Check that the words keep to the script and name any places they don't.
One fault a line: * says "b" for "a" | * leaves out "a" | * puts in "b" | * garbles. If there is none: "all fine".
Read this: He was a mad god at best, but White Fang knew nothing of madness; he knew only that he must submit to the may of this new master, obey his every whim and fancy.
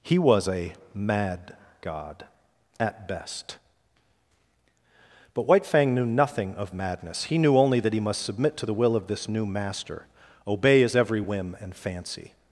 * says "will" for "may"